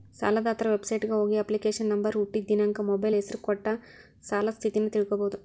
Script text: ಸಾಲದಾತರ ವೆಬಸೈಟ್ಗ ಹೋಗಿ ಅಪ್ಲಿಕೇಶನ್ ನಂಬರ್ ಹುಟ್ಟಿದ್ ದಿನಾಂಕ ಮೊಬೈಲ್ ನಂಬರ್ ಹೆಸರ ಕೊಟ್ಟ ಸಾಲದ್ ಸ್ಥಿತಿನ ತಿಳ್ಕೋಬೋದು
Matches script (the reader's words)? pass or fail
fail